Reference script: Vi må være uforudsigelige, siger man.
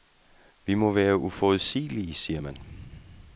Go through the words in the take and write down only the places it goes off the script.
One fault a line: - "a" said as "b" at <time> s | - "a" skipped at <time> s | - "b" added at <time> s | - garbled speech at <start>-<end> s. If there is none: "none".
none